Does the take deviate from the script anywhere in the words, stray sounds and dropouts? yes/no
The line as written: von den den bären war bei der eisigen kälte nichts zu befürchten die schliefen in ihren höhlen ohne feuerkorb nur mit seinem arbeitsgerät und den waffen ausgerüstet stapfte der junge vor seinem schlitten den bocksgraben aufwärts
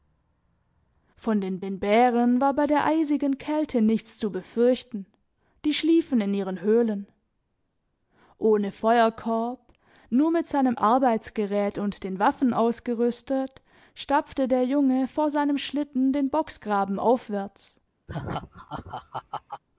yes